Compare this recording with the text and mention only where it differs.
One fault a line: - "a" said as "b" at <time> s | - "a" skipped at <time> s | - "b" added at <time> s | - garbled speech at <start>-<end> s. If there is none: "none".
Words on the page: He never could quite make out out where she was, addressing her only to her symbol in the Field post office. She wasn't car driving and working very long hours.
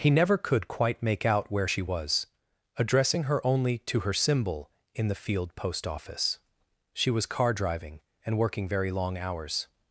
- "out" skipped at 1.5 s
- "wasn't" said as "was" at 7.1 s